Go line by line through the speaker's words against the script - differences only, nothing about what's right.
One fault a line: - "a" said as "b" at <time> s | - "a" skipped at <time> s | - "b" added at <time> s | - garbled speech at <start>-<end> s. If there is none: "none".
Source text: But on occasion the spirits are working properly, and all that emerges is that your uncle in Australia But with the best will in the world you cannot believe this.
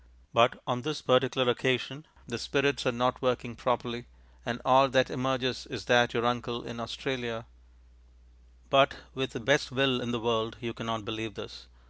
- "this particular" added at 0.8 s
- "not" added at 2.9 s